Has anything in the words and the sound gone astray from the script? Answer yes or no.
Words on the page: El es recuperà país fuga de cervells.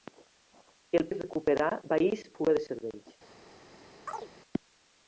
yes